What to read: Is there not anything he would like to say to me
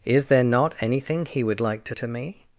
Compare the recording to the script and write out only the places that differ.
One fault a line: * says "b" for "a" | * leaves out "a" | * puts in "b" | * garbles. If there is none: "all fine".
* leaves out "say"